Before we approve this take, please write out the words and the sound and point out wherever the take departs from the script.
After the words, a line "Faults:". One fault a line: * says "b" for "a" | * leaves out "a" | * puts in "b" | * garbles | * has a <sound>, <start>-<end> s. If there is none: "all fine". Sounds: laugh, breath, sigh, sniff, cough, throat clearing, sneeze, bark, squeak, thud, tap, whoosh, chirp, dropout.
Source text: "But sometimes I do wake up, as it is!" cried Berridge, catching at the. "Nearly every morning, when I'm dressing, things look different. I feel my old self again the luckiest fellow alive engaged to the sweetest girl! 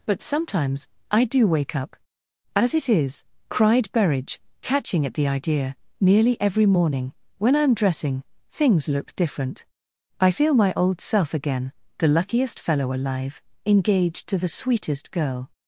"But sometimes I do wake up, as it is!" cried Berridge, catching at the idea. "Nearly every morning, when I'm dressing, things look different. I feel my old self again the luckiest fellow alive engaged to the sweetest girl!
Faults:
* puts in "idea"